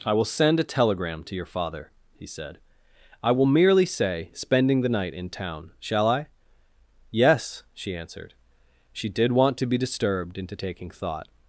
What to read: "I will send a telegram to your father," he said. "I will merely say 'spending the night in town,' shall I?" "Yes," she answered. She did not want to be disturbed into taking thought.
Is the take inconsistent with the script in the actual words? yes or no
yes